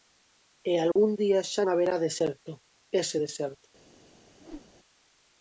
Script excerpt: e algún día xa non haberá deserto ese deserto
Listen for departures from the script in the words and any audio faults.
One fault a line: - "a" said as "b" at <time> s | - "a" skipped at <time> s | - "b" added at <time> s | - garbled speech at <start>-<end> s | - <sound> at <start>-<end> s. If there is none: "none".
- dropout at 0.9-1.0 s
- "non" skipped at 1.6 s
- whoosh at 4.4-4.7 s